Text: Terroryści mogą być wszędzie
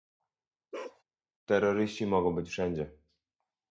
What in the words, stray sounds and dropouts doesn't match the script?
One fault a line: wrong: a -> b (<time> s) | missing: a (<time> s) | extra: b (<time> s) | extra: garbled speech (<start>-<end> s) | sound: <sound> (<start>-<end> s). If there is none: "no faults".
sound: bark (0.7-1.0 s)